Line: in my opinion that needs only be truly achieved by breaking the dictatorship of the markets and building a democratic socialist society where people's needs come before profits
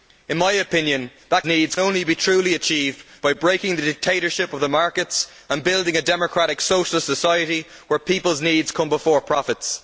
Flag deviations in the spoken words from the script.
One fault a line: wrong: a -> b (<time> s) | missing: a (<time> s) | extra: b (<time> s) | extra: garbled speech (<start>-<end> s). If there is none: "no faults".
no faults